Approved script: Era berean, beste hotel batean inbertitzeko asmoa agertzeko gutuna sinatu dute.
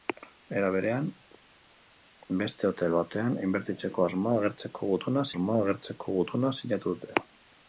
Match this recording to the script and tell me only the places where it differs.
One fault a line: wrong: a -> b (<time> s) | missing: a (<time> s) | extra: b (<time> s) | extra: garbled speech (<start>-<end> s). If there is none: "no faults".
extra: asmoa agertzeko gutuna (5.3 s)